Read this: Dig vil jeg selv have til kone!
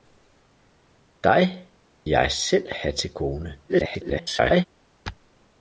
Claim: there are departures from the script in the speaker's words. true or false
true